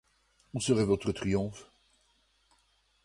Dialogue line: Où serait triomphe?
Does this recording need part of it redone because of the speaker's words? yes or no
yes